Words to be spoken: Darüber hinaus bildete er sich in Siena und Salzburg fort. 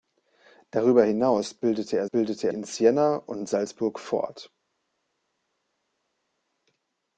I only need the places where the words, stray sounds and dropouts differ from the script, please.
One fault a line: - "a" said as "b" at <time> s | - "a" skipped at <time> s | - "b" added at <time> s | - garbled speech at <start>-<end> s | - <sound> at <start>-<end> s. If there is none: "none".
- "sich" said as "bildete" at 2.0 s